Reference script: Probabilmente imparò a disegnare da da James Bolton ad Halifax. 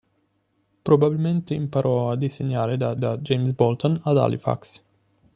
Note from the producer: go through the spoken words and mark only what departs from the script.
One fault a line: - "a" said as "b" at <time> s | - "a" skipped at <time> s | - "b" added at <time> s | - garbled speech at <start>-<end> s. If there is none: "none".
none